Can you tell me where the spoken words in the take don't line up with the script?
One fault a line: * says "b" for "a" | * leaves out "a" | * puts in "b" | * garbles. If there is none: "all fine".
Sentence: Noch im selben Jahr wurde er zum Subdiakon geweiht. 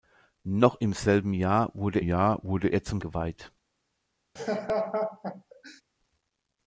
* puts in "Jahr wurde"
* leaves out "Subdiakon"